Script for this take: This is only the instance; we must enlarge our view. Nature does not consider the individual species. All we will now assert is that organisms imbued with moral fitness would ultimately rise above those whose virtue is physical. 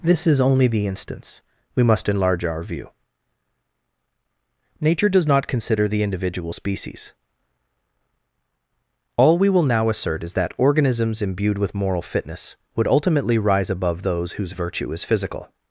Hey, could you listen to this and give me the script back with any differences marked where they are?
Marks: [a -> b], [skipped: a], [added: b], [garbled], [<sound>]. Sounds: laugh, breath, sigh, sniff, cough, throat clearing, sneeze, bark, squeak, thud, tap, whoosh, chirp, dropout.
This is only the instance; we must enlarge our view. Nature does not consider the individual species. All we will now assert is that organisms imbued with moral fitness would ultimately rise above those whose virtue is physical.